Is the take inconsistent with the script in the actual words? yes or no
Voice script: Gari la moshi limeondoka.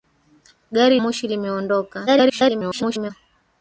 yes